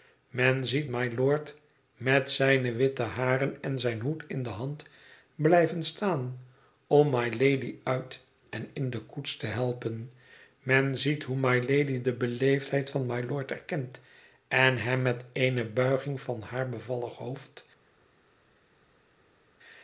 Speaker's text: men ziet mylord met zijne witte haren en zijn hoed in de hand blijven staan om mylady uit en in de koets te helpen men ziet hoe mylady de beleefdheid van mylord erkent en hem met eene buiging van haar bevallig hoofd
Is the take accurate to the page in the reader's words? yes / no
yes